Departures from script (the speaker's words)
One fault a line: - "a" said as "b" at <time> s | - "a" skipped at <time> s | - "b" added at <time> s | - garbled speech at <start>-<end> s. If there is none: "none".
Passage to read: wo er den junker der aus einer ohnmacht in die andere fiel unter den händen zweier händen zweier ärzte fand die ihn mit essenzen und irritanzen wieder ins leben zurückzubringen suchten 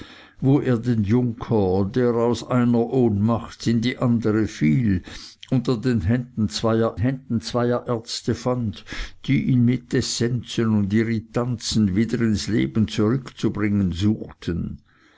none